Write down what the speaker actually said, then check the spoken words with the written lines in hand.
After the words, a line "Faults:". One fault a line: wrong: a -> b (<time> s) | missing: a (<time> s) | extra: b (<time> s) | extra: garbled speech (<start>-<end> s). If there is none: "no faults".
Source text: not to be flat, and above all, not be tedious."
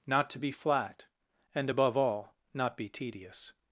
not to be flat, and above all, not be tedious."
Faults:
no faults